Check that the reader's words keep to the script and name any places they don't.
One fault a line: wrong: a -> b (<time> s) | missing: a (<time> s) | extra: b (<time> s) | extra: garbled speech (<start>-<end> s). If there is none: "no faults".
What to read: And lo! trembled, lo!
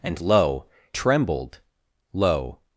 no faults